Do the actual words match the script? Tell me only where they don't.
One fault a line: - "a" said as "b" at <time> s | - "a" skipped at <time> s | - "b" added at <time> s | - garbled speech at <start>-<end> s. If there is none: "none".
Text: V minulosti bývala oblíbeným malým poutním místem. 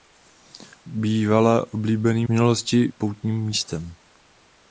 - "minulosti" skipped at 0.9 s
- "malým" said as "minulosti" at 2.3 s